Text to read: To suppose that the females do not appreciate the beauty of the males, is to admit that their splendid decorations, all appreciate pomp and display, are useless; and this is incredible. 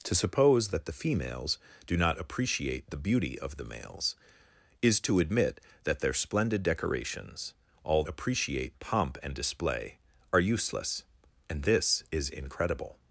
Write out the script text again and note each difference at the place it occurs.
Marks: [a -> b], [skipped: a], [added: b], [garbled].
To suppose that the females do not appreciate the beauty of the males, is to admit that their splendid decorations, all appreciate pomp and display, are useless; and this is incredible.